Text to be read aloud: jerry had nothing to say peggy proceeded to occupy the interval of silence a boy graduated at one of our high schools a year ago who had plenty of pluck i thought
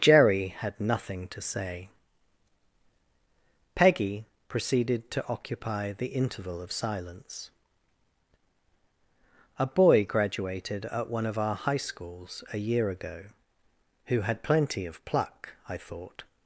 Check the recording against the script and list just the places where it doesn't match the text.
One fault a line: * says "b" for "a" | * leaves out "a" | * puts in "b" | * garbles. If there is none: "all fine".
all fine